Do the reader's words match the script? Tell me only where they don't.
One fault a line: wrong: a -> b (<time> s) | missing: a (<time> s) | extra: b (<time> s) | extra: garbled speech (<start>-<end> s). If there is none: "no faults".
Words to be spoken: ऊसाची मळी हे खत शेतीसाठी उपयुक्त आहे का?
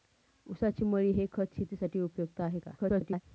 extra: garbled speech (2.8-3.2 s)